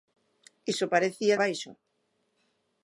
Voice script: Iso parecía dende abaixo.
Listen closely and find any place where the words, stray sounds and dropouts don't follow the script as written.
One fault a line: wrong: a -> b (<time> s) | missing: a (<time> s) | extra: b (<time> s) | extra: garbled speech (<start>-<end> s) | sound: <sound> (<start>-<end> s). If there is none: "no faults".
missing: dende (1.4 s)